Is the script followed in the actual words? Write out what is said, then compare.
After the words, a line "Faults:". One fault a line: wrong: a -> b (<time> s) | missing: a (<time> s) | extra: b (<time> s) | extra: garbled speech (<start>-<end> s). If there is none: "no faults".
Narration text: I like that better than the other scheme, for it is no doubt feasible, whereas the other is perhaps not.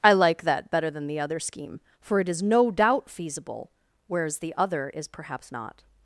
I like that better than the other scheme, for it is no doubt feasible, whereas the other is perhaps not.
Faults:
no faults